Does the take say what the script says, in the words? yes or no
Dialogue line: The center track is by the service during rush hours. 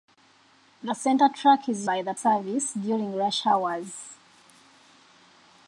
yes